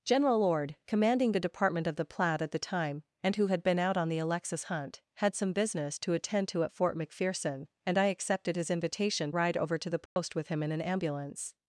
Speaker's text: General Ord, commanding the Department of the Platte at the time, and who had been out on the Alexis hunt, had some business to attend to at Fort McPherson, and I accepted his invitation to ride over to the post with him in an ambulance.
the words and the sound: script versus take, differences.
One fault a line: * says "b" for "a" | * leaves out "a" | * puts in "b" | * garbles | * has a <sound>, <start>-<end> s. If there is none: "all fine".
* leaves out "to"
* has a dropout, 10.1-10.2 s